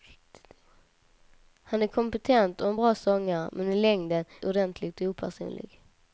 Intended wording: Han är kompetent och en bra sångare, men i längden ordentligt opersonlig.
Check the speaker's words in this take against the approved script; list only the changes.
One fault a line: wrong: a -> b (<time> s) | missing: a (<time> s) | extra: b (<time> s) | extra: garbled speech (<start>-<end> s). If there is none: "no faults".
no faults